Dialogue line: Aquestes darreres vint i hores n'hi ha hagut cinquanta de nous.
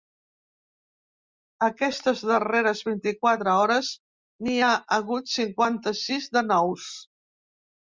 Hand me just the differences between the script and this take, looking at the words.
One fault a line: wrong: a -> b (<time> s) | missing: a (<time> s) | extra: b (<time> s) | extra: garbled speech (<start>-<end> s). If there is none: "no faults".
extra: quatre (3.3 s)
extra: sis (6.0 s)